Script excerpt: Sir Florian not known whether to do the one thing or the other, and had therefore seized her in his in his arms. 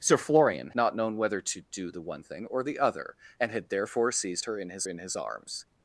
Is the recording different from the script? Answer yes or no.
no